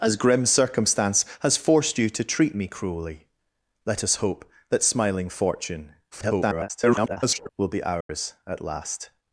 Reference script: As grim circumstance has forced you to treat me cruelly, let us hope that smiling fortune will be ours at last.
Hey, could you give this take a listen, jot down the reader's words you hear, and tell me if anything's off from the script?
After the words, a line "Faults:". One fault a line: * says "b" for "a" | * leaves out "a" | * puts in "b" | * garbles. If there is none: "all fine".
As grim circumstance has forced you to treat me cruelly, let us hope that smiling fortune [garbled] will be ours at last.
Faults:
* garbles